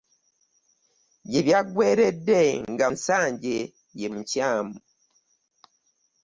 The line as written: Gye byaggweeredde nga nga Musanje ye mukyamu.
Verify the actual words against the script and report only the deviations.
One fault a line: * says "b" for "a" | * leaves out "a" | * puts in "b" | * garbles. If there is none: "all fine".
* leaves out "nga"